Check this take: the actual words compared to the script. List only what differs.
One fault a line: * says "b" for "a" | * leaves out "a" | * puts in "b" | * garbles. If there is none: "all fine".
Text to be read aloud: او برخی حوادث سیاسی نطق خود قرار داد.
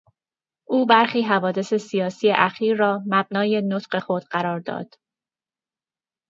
* puts in "اخیر را مبنای"